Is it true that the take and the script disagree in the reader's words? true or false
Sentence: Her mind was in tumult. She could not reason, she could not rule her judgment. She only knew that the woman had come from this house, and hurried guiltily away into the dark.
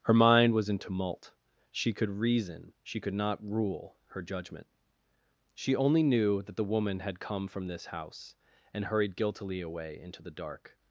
true